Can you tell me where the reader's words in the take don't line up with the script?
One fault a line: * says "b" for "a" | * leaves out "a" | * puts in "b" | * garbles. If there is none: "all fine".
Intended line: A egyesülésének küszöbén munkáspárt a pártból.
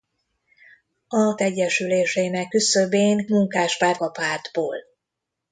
all fine